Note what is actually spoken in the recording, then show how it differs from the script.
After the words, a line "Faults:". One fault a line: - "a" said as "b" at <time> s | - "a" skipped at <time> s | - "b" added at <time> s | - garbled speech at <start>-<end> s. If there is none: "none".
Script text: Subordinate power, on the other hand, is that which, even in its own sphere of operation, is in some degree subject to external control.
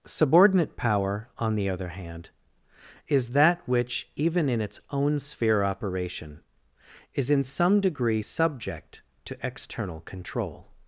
Subordinate power, on the other hand, is that which, even in its own sphere operation, is in some degree subject to external control.
Faults:
- "of" skipped at 5.6 s